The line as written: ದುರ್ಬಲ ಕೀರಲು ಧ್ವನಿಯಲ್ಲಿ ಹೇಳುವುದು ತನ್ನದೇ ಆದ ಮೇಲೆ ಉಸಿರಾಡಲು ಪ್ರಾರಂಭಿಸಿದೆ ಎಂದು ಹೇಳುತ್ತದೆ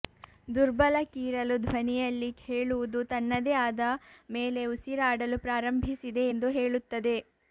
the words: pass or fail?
pass